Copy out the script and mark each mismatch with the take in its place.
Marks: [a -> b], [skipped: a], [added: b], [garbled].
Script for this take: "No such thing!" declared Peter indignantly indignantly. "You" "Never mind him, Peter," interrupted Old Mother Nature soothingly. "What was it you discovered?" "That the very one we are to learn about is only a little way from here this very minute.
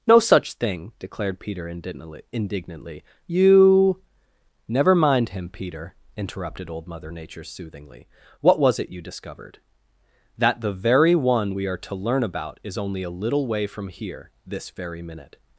"No such thing!" declared Peter indignantly indignantly. "You" "Never mind him, Peter," interrupted Old Mother Nature soothingly. "What was it you discovered?" "That the very one we are to learn about is only a little way from here this very minute.